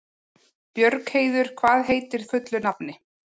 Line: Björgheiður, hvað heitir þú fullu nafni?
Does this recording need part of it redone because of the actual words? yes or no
yes